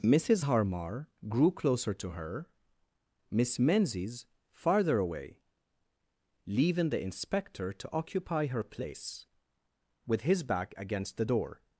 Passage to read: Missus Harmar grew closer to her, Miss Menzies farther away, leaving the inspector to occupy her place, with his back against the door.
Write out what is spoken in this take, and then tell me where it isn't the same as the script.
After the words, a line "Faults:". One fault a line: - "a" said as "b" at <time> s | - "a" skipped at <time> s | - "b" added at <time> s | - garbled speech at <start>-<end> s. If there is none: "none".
Missus Harmar grew closer to her, Miss Menzies farther away, leaving the inspector to occupy her place, with his back against the door.
Faults:
none